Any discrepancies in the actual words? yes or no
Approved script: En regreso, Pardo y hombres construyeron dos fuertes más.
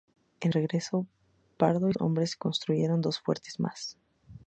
no